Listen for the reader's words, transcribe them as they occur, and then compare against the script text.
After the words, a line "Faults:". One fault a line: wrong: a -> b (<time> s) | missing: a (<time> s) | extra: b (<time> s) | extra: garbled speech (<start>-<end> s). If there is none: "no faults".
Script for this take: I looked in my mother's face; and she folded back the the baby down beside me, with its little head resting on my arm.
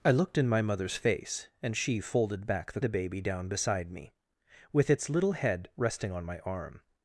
I looked in my mother's face; and she folded back the the baby down beside me, with its little head resting on my arm.
Faults:
no faults